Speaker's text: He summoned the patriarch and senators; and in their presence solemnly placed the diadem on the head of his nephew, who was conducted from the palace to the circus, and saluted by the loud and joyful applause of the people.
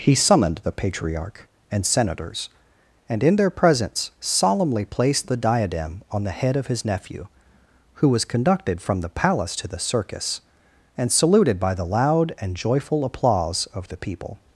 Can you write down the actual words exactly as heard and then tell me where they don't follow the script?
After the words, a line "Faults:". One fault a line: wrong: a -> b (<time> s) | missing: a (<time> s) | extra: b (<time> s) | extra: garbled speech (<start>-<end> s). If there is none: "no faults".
He summoned the patriarch and senators; and in their presence solemnly placed the diadem on the head of his nephew, who was conducted from the palace to the circus, and saluted by the loud and joyful applause of the people.
Faults:
no faults